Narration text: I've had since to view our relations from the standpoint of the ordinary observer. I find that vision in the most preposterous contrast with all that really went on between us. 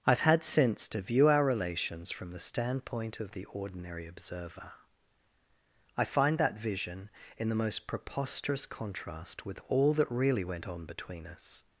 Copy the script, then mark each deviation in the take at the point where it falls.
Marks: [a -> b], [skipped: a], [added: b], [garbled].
I've had since to view our relations from the standpoint of the ordinary observer. I find that vision in the most preposterous contrast with all that really went on between us.